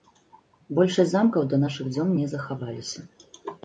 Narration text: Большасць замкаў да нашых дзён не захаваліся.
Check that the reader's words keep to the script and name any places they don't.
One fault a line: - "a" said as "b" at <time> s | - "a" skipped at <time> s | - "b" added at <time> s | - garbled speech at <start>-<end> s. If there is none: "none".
none